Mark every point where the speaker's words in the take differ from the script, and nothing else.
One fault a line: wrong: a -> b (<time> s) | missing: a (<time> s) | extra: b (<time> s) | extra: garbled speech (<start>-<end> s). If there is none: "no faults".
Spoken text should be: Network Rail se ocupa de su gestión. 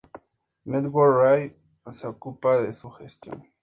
no faults